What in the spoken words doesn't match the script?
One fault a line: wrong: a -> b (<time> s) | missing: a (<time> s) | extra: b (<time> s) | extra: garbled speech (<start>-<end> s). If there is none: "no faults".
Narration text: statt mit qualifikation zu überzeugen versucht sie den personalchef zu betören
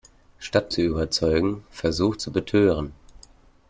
missing: mit qualifikation (0.7 s)
missing: sie den personalchef (2.2 s)